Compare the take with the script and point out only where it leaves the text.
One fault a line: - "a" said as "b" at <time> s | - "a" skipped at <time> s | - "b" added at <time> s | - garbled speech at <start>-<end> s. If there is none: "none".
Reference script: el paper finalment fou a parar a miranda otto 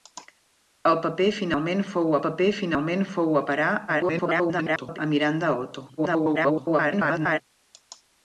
- "paper finalment fou" added at 2.2 s
- garbled speech at 3.9-5.0 s
- garbled speech at 6.0-7.4 s